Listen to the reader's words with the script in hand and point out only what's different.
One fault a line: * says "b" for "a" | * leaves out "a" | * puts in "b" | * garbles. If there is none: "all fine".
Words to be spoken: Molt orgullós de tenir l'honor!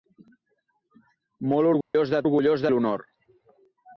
* says "orgullós" for "tenir"